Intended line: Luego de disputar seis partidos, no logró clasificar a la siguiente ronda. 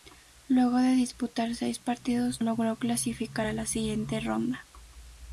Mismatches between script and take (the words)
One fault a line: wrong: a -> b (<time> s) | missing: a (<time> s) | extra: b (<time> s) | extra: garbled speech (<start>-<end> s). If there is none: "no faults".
missing: no (2.4 s)